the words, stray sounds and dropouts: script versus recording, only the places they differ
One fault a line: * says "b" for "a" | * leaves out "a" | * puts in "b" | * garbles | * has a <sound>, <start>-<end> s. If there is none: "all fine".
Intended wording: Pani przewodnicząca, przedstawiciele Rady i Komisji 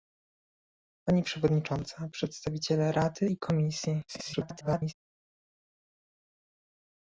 * garbles